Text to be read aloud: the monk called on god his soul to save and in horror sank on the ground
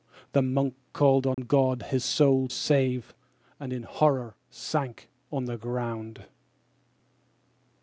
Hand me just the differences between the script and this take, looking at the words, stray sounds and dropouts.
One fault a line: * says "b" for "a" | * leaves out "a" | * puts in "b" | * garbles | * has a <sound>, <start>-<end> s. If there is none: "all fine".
* has a dropout, 1.3-1.4 s
* leaves out "to"